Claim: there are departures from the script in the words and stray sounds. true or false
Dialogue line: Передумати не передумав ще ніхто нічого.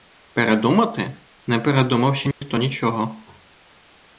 true